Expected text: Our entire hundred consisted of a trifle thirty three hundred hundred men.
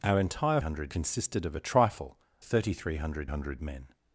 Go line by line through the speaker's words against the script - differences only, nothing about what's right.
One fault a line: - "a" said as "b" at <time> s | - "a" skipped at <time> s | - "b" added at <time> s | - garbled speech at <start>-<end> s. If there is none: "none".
none